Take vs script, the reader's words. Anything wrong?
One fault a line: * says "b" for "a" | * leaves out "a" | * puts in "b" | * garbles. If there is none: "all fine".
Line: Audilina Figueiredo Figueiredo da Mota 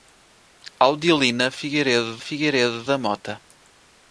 all fine